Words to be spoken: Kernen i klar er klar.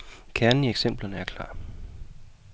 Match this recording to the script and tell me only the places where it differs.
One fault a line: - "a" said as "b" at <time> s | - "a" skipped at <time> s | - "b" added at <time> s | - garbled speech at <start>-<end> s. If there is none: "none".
- "klar" said as "eksemplerne" at 0.7 s